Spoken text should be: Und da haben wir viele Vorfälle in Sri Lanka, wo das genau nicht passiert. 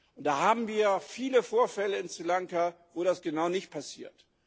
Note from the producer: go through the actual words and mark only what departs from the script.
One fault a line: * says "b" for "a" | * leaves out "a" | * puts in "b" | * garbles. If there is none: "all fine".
all fine